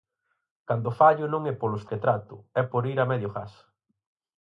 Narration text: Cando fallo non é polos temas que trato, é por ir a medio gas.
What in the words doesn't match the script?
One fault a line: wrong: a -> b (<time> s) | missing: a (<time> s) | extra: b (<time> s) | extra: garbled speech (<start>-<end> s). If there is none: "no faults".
missing: temas (1.8 s)